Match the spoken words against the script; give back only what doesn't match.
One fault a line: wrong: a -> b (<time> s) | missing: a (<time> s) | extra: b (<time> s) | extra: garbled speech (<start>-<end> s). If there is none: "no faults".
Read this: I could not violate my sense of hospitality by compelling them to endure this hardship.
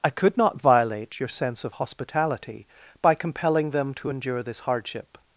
wrong: my -> your (1.2 s)